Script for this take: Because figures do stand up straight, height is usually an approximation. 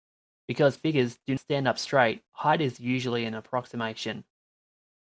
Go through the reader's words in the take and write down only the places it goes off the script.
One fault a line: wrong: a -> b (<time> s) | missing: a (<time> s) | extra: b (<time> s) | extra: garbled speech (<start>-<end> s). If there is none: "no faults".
no faults